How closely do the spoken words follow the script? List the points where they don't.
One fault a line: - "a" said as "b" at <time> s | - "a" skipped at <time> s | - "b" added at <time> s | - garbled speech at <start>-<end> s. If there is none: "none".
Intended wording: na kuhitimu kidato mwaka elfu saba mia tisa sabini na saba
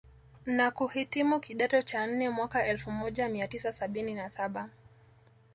- "cha nne" added at 1.8 s
- "saba" said as "moja" at 2.9 s